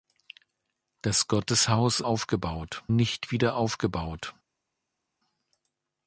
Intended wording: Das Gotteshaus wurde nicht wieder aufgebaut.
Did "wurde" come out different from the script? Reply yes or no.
yes